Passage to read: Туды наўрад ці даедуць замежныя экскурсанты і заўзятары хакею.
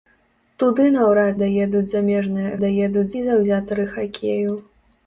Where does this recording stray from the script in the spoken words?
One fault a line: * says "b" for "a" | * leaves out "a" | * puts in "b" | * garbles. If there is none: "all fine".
* leaves out "ці"
* says "даедуць" for "экскурсанты"